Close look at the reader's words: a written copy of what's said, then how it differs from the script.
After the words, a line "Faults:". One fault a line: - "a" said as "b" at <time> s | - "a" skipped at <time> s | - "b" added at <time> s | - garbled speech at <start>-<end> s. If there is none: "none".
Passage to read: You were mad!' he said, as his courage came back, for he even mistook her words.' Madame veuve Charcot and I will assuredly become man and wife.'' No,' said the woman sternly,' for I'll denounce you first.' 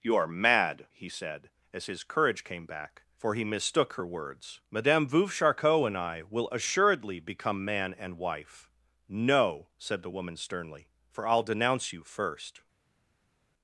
You are mad!' he said, as his courage came back, for he mistook her words.' Madame veuve Charcot and I will assuredly become man and wife.'' No,' said the woman sternly,' for I'll denounce you first.'
Faults:
- "were" said as "are" at 0.1 s
- "even" skipped at 3.4 s